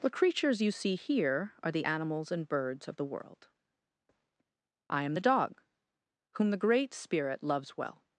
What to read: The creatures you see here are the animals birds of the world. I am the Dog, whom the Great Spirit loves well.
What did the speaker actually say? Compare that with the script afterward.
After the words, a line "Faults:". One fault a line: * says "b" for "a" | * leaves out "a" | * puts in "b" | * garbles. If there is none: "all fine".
The creatures you see here are the animals and birds of the world. I am the Dog, whom the Great Spirit loves well.
Faults:
* puts in "and"